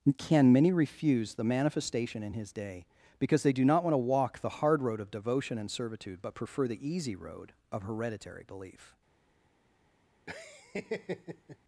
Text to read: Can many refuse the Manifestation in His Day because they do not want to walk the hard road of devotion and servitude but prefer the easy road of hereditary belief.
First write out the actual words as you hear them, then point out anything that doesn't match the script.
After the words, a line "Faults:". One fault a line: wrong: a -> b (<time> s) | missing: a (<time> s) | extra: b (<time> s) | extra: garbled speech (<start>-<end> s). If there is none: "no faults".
Can many refuse the Manifestation in His Day because they do not want to walk the hard road of devotion and servitude but prefer the easy road of hereditary belief.
Faults:
no faults